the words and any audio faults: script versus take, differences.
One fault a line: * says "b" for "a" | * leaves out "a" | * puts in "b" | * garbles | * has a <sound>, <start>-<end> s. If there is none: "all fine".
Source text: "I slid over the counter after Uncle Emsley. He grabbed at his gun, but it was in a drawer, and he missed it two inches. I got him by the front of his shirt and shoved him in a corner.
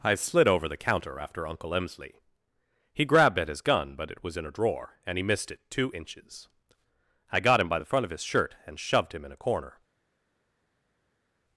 all fine